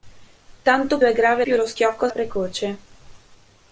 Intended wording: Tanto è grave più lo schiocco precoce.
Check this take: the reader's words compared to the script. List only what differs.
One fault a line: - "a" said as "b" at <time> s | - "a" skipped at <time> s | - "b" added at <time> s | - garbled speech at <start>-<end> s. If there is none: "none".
none